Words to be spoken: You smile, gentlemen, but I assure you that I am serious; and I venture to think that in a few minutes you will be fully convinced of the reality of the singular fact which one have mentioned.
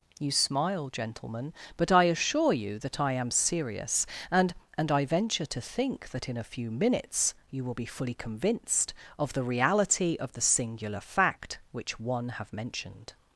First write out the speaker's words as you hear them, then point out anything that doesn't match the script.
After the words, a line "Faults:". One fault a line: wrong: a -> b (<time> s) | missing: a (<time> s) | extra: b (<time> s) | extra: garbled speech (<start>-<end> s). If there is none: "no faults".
You smile, gentlemen, but I assure you that I am serious; and and I venture to think that in a few minutes you will be fully convinced of the reality of the singular fact which one have mentioned.
Faults:
extra: and (4.8 s)